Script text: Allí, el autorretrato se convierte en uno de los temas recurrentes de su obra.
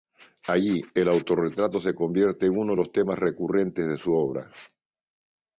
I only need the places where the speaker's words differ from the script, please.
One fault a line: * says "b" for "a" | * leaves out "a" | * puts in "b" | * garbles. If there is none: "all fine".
all fine